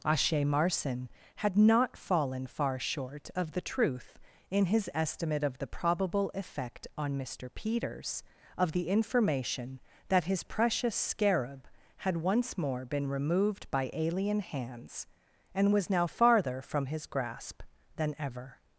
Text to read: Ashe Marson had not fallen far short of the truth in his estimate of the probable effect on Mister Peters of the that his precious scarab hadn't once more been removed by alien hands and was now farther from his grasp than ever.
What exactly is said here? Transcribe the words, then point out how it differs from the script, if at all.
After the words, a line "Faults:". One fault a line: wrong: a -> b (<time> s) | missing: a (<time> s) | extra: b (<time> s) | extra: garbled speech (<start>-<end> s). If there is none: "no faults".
Ashe Marson had not fallen far short of the truth in his estimate of the probable effect on Mister Peters of the information that his precious scarab had once more been removed by alien hands and was now farther from his grasp than ever.
Faults:
extra: information (8.9 s)
wrong: hadn't -> had (12.0 s)